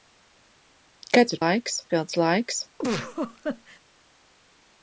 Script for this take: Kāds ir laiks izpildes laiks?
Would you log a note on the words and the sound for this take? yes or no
yes